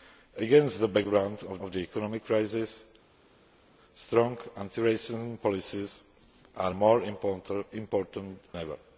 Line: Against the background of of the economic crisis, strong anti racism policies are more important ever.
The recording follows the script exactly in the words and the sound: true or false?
true